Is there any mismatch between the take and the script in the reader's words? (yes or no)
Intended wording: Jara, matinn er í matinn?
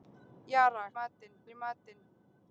no